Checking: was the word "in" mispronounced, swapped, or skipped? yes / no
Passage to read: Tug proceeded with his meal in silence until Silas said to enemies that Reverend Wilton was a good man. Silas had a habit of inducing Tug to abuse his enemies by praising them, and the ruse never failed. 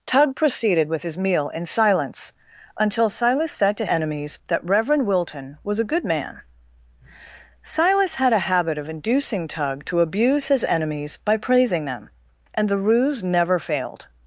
no